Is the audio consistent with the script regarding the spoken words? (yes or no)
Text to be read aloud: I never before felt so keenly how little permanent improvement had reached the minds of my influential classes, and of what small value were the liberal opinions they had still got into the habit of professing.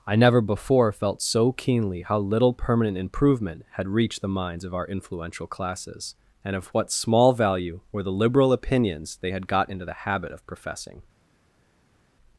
no